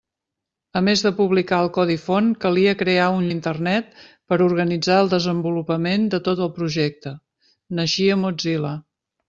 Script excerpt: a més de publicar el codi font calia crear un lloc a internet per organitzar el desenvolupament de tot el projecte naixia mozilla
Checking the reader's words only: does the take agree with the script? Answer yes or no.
no